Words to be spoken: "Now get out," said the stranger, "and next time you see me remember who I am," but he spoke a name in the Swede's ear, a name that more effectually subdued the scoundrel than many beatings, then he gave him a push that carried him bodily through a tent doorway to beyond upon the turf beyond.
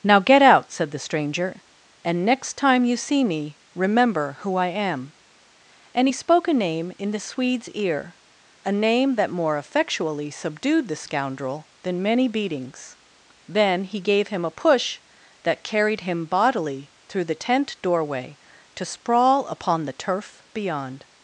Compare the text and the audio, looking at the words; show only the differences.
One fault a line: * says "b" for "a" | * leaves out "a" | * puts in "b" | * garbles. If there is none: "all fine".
* says "and" for "but"
* says "the" for "a"
* says "sprawl" for "beyond"